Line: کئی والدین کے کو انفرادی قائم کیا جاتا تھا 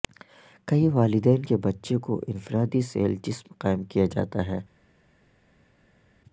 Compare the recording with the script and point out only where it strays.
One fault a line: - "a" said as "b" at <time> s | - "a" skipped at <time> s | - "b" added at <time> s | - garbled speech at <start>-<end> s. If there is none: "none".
- "بچے" added at 1.6 s
- "سیل جسم" added at 2.8 s
- "تھا" said as "ہے" at 4.5 s